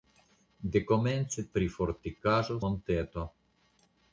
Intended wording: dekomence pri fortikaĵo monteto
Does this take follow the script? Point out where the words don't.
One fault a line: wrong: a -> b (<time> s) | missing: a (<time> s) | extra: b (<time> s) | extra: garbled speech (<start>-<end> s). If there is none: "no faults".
no faults